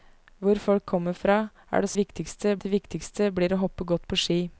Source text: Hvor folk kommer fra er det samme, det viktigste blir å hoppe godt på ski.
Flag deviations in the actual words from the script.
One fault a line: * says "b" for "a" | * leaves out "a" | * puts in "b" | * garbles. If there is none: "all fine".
* says "viktigste" for "samme"